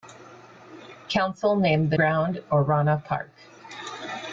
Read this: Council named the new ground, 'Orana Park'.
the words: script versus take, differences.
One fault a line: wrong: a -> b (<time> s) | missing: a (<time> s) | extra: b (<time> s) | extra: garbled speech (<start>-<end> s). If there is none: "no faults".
missing: new (2.0 s)